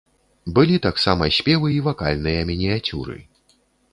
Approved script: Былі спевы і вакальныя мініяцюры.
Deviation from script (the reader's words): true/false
true